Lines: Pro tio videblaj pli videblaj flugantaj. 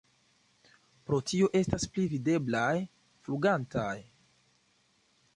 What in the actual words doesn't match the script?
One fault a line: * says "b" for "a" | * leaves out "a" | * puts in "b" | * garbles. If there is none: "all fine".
* says "estas" for "videblaj"